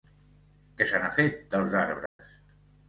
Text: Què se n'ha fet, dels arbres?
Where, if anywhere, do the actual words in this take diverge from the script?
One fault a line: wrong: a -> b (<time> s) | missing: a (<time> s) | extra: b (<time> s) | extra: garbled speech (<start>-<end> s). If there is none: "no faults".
no faults